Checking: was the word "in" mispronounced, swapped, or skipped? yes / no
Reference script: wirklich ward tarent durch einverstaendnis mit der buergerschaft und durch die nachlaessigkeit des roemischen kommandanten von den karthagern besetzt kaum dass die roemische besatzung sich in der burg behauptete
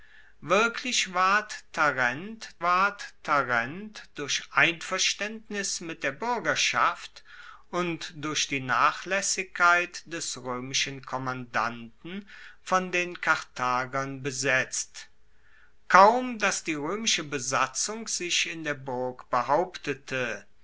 no